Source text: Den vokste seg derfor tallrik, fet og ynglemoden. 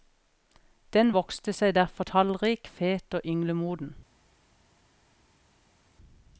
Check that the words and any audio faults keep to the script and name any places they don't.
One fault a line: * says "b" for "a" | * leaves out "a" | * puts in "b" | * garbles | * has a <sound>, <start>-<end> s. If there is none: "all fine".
all fine